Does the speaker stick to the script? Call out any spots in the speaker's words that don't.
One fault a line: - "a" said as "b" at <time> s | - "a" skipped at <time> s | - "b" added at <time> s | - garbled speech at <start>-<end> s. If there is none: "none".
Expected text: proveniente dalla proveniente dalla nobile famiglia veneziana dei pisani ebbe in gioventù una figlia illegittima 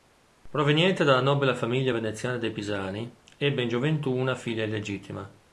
- "proveniente dalla" skipped at 1.2 s